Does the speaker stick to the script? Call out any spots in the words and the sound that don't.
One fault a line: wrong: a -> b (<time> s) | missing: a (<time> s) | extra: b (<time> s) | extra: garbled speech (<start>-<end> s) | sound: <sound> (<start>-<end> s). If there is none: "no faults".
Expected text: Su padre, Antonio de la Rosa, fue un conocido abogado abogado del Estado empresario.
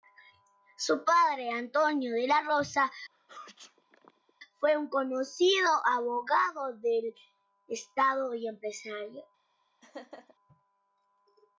sound: sneeze (3.1-4.3 s)
missing: abogado (6.8 s)
extra: y (8.4 s)
sound: laugh (9.8-10.4 s)